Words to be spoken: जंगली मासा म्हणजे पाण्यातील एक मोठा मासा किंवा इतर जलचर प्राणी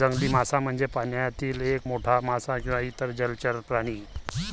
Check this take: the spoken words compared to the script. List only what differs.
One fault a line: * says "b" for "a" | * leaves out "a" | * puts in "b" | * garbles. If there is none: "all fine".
all fine